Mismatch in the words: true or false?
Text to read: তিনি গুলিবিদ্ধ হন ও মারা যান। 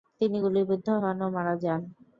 false